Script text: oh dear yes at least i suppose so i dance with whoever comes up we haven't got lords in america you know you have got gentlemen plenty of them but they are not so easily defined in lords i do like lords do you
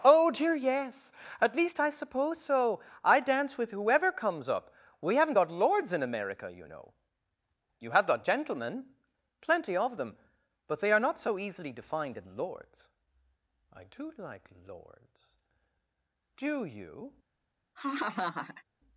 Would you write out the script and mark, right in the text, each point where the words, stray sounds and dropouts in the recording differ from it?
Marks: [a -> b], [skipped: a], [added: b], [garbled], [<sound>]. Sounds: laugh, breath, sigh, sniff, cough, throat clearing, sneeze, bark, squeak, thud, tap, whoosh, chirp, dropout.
oh dear yes at least i suppose so i dance with whoever comes up we haven't got lords in america you know you have got gentlemen plenty of them but they are not so easily defined in lords i do like lords do you [laugh]